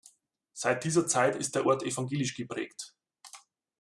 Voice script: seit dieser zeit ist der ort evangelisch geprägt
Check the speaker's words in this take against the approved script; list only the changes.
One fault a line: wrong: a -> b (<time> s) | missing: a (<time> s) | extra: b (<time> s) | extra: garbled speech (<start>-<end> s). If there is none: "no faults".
no faults